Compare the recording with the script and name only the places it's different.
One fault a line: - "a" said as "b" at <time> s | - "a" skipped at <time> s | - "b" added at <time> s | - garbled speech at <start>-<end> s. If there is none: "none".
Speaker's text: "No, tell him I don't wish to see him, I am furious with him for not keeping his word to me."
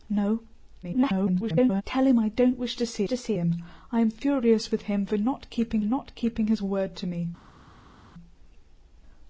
- garbled speech at 0.8-1.8 s
- "to see" added at 3.1 s
- "not keeping" added at 5.8 s